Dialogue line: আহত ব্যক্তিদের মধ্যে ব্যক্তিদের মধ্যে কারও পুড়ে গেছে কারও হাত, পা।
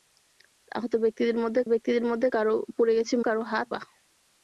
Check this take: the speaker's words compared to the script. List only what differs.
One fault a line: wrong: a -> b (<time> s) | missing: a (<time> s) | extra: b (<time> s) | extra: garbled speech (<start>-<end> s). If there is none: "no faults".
no faults